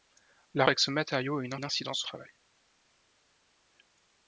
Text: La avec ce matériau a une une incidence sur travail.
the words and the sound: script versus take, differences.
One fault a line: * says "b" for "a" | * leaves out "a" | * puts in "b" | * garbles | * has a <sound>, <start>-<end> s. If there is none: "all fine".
all fine